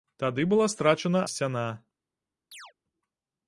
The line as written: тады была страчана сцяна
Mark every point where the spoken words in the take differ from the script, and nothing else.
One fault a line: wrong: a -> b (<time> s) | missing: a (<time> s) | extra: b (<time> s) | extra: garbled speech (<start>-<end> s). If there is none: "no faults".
no faults